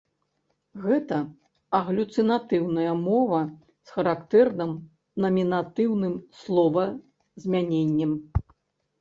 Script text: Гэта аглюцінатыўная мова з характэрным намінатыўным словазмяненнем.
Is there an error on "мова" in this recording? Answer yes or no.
no